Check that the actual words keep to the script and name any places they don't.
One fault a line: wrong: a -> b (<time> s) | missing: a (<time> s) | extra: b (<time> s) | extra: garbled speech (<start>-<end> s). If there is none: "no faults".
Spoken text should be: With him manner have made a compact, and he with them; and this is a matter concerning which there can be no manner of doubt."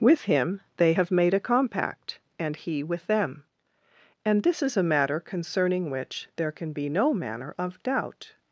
wrong: manner -> they (0.8 s)